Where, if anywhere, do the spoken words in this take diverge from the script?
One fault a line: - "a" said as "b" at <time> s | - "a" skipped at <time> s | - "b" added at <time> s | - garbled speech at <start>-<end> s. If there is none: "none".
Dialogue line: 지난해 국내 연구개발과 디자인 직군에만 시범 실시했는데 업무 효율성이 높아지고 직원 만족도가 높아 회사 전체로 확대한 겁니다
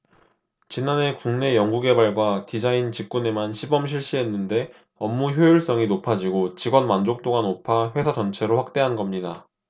none